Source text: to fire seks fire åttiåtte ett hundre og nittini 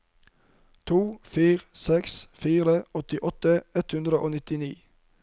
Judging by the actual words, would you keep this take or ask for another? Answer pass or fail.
pass